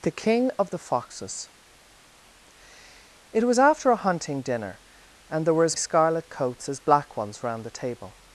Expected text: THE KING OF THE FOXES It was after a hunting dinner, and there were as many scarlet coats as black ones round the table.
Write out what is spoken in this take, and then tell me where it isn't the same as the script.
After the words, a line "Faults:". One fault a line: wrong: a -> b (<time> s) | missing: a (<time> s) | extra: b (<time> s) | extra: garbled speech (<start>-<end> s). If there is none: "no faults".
THE KING OF THE FOXES It was after a hunting dinner, and there were as scarlet coats as black ones round the table.
Faults:
missing: many (5.8 s)